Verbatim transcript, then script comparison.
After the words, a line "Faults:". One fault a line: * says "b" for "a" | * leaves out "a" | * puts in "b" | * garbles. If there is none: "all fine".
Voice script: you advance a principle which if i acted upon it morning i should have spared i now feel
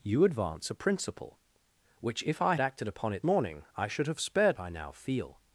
you advance a principle which if i acted upon it morning i should have spared i now feel
Faults:
all fine